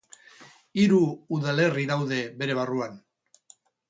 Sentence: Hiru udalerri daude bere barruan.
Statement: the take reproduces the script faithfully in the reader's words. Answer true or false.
true